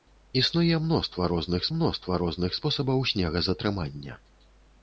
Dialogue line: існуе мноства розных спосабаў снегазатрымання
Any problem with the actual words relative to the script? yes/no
yes